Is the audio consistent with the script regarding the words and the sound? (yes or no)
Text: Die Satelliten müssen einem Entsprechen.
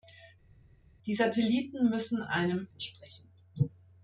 yes